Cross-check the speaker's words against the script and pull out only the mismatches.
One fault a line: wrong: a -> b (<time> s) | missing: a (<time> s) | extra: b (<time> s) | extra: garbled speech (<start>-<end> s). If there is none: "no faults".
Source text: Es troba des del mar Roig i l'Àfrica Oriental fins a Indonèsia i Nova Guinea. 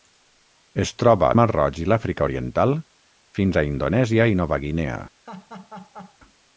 missing: des del (1.3 s)